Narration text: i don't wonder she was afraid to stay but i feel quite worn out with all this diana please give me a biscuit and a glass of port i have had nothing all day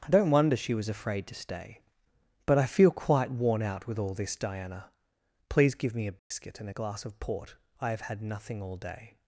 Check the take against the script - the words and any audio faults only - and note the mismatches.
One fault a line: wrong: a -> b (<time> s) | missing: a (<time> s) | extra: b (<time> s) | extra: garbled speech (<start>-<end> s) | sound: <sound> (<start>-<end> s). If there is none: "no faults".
sound: dropout (6.2-6.3 s)